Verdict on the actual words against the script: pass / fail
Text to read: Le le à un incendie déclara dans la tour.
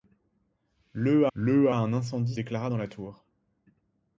pass